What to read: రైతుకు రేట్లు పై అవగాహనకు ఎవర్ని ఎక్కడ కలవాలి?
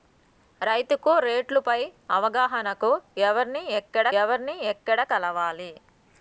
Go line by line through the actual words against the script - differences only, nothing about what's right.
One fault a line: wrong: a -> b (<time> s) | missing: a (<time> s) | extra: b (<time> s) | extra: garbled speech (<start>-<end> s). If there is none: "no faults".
extra: ఎవర్ని ఎక్కడ (4.2 s)